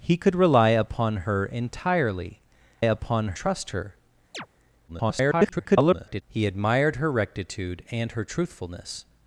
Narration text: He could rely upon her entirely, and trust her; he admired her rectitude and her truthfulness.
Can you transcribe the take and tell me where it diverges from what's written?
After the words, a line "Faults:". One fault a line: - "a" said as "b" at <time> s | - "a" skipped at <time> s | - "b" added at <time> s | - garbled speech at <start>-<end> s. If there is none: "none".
He could rely upon her entirely, upon trust her; [garbled] he admired her rectitude and her truthfulness.
Faults:
- "and" said as "upon" at 2.8 s
- garbled speech at 4.9-6.2 s